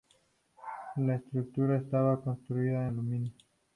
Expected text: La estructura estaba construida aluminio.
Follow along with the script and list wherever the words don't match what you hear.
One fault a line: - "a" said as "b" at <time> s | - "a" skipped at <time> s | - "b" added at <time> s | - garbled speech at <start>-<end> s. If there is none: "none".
none